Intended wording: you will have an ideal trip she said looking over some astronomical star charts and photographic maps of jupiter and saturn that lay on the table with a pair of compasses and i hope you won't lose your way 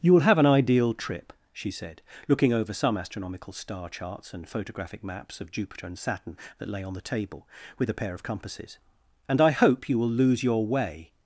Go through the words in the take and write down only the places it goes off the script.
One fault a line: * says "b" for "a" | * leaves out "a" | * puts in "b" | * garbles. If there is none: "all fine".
* says "will" for "won't"